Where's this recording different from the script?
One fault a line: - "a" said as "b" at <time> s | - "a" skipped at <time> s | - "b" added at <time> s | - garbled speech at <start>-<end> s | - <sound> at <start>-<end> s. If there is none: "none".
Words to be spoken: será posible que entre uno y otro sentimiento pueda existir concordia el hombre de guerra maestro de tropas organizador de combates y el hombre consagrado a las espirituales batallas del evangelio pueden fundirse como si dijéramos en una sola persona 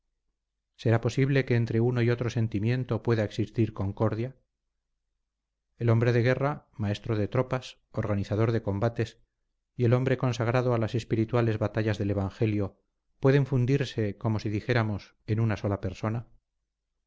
none